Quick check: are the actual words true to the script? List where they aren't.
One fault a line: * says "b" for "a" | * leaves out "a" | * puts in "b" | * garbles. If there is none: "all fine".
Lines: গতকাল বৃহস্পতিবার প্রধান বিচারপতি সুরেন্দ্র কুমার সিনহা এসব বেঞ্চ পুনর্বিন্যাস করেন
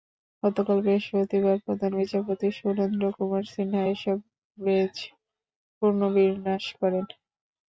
all fine